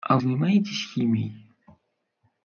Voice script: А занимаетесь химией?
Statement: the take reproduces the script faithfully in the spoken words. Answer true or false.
true